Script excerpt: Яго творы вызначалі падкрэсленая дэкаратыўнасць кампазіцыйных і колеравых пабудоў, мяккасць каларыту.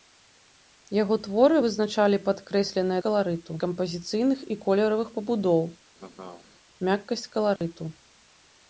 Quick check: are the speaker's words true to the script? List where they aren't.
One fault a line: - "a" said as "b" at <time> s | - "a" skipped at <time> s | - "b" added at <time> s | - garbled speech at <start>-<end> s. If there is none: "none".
- "дэкаратыўнасць" said as "каларыту" at 3.1 s